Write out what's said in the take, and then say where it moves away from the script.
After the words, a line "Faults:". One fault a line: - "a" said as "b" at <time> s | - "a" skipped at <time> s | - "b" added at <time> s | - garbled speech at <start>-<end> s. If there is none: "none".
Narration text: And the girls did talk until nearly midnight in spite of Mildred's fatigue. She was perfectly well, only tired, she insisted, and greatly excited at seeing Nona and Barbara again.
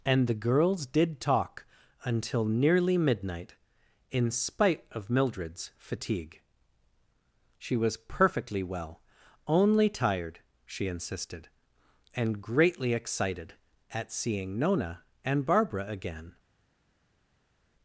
And the girls did talk until nearly midnight in spite of Mildred's fatigue. She was perfectly well, only tired, she insisted, and greatly excited at seeing Nona and Barbara again.
Faults:
none